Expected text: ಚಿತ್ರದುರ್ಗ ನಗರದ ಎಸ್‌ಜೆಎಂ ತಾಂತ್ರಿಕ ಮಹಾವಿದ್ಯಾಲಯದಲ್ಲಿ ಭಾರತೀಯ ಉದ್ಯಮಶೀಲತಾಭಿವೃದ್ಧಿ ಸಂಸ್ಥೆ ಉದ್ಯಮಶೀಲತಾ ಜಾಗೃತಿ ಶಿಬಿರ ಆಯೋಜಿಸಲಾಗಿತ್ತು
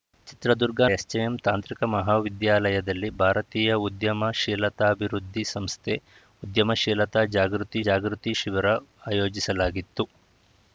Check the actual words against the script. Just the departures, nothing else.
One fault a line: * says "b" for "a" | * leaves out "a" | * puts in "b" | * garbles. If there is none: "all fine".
* leaves out "ನಗರದ"
* puts in "ಜಾಗೃತಿ"